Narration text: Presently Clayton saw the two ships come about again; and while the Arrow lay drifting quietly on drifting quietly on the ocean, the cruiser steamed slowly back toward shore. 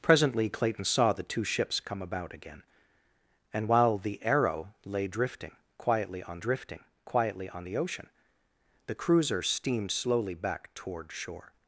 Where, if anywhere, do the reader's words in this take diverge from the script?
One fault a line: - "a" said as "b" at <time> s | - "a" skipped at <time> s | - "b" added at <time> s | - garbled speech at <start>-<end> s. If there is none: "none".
none